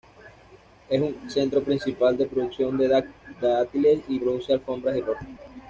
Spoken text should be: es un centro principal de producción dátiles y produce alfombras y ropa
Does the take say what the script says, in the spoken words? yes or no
no